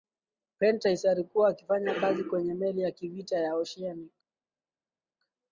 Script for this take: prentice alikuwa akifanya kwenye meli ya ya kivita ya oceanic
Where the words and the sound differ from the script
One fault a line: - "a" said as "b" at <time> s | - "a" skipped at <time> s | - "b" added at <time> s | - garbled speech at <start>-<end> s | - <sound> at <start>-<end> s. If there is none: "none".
- "kazi" added at 1.9 s
- "ya" skipped at 2.9 s